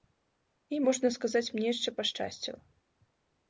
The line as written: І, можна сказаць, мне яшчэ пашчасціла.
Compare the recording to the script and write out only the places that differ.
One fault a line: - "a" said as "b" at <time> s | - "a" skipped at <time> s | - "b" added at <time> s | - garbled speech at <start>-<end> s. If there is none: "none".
none